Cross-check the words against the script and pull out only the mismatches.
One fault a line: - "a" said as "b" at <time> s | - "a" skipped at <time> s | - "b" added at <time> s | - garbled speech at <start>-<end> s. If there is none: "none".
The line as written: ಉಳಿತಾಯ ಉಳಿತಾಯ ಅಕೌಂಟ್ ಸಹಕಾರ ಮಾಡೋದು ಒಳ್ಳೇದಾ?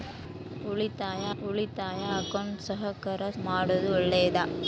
none